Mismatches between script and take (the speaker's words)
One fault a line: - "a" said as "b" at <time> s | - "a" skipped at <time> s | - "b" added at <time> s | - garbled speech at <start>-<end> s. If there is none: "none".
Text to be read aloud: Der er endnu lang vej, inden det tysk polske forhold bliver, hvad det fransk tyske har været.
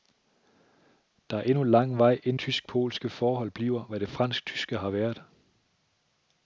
- "det" skipped at 2.4 s